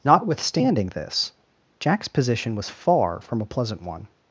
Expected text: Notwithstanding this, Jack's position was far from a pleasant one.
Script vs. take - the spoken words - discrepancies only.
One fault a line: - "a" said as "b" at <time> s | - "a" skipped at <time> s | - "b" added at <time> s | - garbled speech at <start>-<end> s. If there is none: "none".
none